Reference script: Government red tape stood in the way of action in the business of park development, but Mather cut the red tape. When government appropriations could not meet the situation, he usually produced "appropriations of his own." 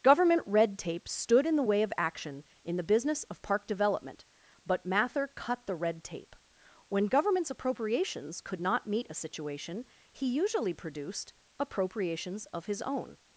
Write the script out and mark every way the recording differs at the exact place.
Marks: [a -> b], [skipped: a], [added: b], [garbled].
Government red tape stood in the way of action in the business of park development, but Mather cut the red tape. When [government -> governments] appropriations could not meet [the -> a] situation, he usually produced "appropriations of his own."